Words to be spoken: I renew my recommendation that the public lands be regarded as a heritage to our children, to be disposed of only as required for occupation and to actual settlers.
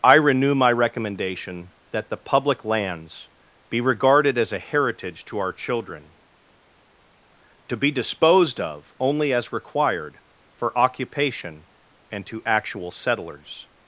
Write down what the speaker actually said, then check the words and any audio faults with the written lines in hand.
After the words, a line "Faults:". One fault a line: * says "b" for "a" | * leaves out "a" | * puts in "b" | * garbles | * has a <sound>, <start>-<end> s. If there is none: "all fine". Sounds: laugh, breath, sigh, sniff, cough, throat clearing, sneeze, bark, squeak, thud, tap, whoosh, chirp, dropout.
I renew my recommendation that the public lands be regarded as a heritage to our children, to be disposed of only as required for occupation and to actual settlers.
Faults:
all fine